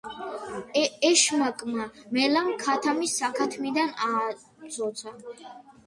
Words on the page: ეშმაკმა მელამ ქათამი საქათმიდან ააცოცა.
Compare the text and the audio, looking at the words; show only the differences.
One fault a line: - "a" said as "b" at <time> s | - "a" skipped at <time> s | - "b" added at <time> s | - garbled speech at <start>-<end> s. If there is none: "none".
none